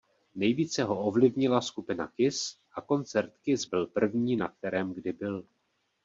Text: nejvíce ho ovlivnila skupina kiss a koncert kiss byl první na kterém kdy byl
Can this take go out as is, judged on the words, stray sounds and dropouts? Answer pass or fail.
pass